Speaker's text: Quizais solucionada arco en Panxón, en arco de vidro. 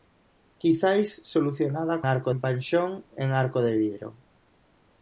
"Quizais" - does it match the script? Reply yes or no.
yes